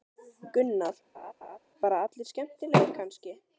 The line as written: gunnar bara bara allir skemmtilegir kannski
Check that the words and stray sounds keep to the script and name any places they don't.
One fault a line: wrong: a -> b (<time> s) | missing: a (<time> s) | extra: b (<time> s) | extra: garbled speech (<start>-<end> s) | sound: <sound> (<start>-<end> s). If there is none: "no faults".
sound: laugh (1.1-1.6 s)
missing: bara (2.0 s)